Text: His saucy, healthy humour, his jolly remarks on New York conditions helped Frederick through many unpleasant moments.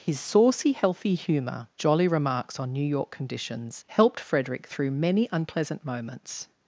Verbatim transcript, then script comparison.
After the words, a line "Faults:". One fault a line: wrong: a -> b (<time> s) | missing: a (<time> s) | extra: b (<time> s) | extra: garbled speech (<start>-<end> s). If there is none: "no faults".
His saucy, healthy humour, jolly remarks on New York conditions helped Frederick through many unpleasant moments.
Faults:
missing: his (1.7 s)